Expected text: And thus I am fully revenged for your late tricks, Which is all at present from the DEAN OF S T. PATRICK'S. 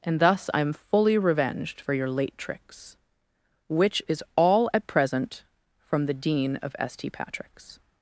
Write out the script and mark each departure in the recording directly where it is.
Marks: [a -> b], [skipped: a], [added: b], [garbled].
And thus I am fully revenged for your late tricks, Which is all at present from the DEAN OF S T. PATRICK'S.